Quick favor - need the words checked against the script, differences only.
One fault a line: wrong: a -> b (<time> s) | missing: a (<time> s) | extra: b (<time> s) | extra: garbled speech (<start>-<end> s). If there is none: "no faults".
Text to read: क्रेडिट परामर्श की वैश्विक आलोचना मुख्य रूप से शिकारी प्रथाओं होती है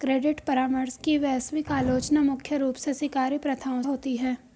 no faults